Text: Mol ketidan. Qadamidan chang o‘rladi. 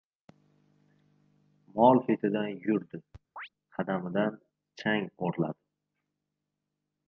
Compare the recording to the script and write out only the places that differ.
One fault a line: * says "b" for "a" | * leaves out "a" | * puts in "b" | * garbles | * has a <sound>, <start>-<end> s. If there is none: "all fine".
* puts in "yurdi"
* has a chirp, 3.4-3.5 s